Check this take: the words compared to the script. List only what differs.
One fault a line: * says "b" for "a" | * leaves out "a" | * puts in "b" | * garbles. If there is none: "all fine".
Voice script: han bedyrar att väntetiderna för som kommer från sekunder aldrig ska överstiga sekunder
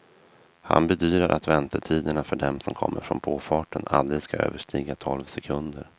* puts in "dem"
* says "påfarten" for "sekunder"
* puts in "tolv"